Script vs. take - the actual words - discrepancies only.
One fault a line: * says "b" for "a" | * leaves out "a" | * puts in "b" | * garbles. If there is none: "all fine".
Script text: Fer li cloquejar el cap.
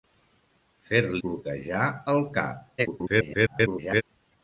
* leaves out "li"
* garbles